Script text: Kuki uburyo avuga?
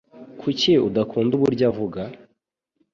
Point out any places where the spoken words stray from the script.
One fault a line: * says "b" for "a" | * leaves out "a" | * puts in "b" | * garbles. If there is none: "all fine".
* puts in "udakunda"